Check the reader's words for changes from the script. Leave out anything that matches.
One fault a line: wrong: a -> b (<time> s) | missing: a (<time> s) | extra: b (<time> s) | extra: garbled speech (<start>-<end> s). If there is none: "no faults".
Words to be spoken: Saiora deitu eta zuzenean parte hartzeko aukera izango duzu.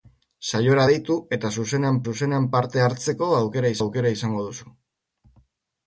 extra: zuzenean (2.1 s)
extra: aukera (3.8 s)